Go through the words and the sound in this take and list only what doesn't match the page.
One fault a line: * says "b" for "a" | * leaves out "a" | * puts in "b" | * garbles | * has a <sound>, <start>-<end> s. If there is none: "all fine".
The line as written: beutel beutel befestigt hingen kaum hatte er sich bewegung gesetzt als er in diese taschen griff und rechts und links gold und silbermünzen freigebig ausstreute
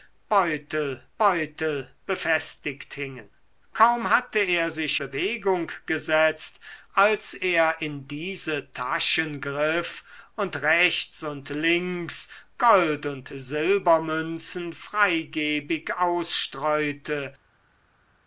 all fine